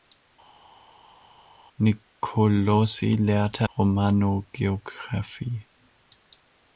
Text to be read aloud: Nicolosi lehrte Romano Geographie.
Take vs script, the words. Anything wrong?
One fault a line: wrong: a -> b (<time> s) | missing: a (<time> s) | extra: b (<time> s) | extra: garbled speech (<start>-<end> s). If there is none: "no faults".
no faults